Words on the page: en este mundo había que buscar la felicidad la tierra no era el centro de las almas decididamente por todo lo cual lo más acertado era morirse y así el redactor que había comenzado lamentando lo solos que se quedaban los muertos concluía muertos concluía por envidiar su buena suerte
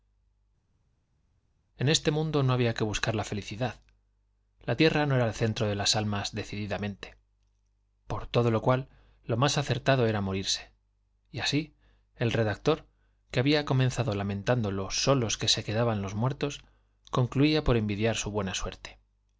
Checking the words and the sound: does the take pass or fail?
fail